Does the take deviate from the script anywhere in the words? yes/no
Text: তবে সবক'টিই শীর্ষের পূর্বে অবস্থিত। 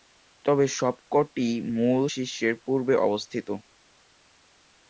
yes